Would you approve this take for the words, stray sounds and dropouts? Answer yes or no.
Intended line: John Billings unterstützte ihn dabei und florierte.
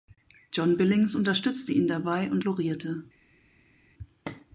yes